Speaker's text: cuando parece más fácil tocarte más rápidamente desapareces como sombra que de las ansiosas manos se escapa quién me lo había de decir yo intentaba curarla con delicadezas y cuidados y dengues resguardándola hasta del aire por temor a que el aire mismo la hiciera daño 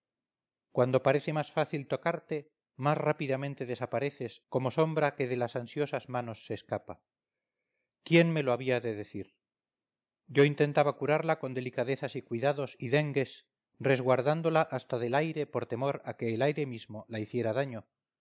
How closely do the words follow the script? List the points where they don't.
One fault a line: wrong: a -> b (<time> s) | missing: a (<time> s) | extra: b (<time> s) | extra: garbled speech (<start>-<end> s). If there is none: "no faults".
no faults